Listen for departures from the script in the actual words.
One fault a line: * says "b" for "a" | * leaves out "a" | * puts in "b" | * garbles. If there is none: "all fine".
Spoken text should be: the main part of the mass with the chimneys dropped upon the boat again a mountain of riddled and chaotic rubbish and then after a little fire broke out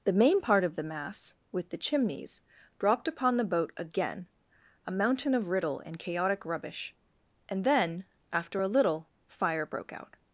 * says "riddle" for "riddled"